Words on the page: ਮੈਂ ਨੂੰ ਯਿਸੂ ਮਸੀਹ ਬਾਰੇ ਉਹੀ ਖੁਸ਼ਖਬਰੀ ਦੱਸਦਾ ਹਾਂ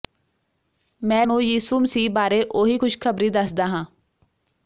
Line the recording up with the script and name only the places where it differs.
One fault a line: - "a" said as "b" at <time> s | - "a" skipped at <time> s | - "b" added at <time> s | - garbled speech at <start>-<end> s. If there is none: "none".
none